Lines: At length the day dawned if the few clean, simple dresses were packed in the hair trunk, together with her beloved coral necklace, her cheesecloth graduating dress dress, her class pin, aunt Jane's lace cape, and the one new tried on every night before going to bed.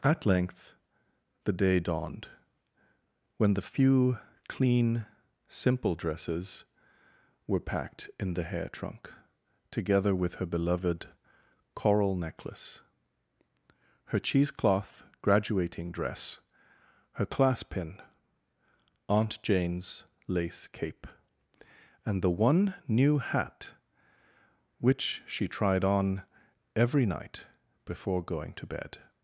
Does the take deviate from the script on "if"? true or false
true